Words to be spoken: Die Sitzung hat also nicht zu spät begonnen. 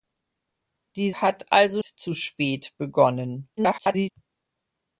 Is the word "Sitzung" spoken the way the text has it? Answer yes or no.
no